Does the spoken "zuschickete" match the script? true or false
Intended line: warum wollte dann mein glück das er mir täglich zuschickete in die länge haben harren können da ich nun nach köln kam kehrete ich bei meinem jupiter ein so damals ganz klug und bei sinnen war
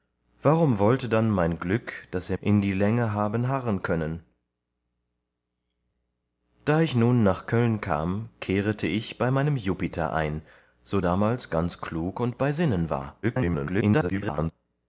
false